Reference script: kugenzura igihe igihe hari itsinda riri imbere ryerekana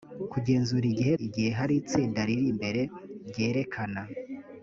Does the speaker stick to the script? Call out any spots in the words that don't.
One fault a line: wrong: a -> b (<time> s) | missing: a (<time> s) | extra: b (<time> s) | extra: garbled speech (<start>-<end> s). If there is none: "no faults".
no faults